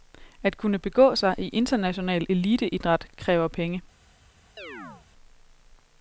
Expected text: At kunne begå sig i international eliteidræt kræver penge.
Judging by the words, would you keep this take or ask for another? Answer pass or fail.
pass